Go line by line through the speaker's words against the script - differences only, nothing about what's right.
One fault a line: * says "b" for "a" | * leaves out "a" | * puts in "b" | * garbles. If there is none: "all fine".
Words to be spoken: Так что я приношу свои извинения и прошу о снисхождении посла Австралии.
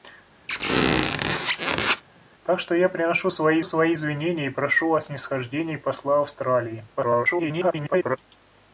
* puts in "свои"
* garbles